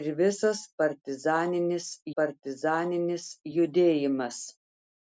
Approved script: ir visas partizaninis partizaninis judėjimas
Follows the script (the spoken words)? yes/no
yes